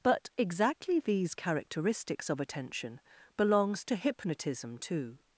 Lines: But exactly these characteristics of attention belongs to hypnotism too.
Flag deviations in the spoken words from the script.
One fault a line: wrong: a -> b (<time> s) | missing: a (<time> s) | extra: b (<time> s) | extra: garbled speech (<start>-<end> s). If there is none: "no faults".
no faults